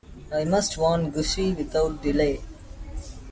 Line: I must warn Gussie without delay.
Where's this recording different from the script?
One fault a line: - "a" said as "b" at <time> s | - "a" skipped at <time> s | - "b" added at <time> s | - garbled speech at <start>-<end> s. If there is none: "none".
none